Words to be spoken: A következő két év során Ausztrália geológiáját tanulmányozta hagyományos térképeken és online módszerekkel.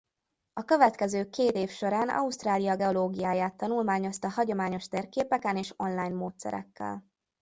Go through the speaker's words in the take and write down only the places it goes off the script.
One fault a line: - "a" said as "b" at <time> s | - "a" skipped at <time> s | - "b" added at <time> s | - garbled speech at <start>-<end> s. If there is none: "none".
none